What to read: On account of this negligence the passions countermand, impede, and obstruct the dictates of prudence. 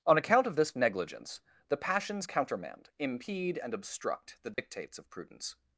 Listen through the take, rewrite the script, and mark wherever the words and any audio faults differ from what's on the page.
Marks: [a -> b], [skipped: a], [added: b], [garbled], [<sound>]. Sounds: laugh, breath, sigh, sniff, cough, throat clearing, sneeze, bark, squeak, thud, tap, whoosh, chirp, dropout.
On account of this negligence the passions countermand, impede, and obstruct the dictates [dropout] of prudence.